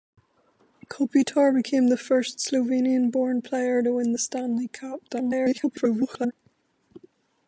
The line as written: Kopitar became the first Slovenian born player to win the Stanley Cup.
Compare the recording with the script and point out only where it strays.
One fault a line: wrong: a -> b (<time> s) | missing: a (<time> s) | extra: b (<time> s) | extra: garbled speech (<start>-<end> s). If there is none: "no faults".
extra: garbled speech (5.1-6.3 s)